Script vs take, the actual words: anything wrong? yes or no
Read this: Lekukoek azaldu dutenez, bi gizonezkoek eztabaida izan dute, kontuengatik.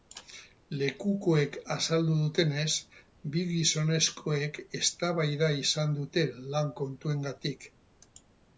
yes